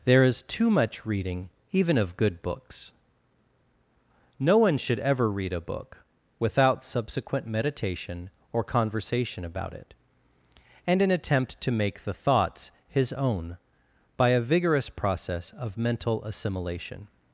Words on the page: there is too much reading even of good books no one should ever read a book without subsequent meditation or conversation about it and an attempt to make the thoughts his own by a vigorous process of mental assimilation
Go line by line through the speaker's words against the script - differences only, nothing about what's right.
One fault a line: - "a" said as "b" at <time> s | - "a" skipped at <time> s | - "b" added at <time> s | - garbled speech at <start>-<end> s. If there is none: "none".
none